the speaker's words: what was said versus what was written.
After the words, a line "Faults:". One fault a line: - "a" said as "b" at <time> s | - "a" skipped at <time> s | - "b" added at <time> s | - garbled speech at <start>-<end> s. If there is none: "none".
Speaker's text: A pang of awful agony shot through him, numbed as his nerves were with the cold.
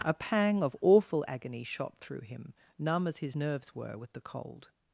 A pang of awful agony shot through him, numb as his nerves were with the cold.
Faults:
- "numbed" said as "numb" at 2.8 s